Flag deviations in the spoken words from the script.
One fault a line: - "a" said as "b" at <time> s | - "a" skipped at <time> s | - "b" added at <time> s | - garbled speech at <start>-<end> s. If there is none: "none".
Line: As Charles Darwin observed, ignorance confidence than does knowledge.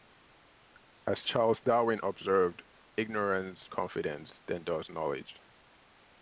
none